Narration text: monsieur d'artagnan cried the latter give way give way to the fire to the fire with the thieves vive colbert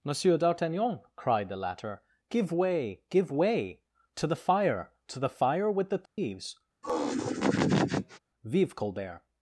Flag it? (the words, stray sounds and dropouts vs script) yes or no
yes